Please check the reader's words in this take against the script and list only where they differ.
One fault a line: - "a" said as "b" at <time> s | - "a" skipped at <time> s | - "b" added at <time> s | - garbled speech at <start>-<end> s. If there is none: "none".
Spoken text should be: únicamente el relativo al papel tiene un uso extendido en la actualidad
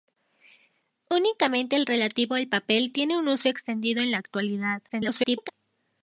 - garbled speech at 4.9-5.5 s